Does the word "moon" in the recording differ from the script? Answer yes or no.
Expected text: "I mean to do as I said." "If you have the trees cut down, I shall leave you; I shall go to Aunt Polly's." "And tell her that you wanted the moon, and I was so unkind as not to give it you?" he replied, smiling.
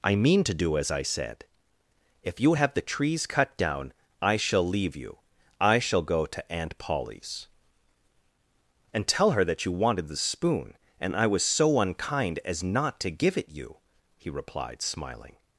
yes